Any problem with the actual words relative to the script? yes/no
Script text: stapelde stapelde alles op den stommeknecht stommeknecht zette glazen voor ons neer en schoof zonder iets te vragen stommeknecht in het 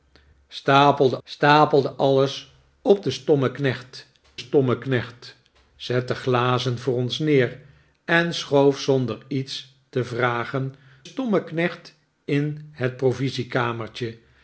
no